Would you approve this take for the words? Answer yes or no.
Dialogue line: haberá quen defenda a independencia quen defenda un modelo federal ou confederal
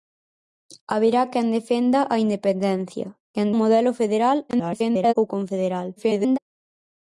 no